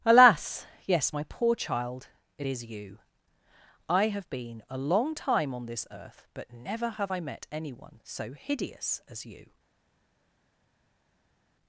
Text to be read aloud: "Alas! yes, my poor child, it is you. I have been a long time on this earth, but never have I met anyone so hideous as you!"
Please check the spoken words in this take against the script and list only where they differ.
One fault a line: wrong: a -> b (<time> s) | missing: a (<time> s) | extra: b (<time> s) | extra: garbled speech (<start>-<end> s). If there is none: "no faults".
no faults